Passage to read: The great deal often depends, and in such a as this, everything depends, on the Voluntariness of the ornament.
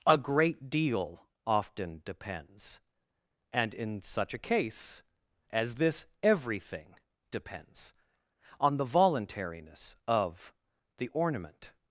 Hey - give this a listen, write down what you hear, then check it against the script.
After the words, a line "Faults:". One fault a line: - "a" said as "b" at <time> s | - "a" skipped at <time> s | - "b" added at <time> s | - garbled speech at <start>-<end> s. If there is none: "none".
A great deal often depends, and in such a case as this, everything depends, on the Voluntariness of the ornament.
Faults:
- "The" said as "A" at 0.1 s
- "case" added at 4.4 s